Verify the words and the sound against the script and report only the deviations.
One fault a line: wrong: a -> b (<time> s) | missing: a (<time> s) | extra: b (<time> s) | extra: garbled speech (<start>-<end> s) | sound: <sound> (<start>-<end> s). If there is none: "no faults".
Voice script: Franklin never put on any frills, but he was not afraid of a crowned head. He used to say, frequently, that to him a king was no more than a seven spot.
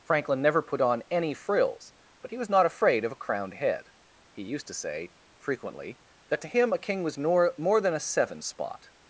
wrong: no -> nor (7.2 s)